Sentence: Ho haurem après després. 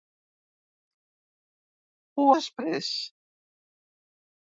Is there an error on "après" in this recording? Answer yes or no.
yes